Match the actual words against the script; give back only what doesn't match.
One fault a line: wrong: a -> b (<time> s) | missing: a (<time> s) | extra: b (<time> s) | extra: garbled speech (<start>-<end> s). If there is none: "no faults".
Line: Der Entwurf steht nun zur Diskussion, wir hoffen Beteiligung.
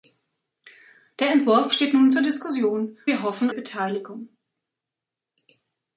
no faults